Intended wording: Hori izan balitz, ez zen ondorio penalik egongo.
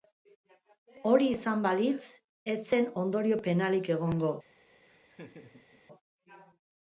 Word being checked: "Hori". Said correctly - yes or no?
yes